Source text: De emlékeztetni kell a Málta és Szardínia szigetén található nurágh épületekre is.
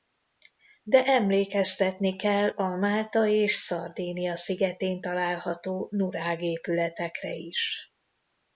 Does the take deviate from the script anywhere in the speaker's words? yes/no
no